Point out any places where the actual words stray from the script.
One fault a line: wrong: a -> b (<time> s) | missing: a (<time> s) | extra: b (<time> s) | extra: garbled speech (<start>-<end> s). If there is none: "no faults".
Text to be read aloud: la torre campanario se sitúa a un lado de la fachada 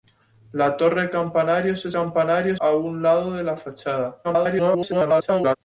wrong: sitúa -> campanario (1.9 s)
extra: garbled speech (4.2-5.6 s)